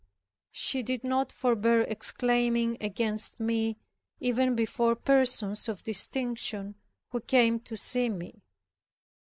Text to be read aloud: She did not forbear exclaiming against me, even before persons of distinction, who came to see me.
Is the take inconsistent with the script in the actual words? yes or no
no